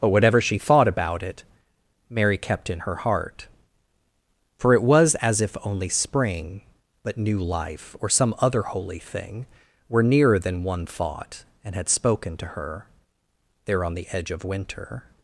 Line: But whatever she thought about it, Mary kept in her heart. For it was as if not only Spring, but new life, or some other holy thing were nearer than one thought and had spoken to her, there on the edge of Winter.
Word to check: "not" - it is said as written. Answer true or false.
false